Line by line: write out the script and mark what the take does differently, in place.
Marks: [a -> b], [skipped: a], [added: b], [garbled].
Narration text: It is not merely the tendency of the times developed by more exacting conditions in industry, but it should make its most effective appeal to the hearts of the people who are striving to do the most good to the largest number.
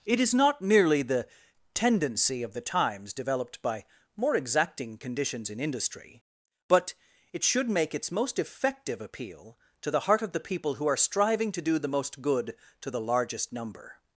It is not merely the tendency of the times developed by more exacting conditions in industry, but it should make its most effective appeal to the [hearts -> heart] of the people who are striving to do the most good to the largest number.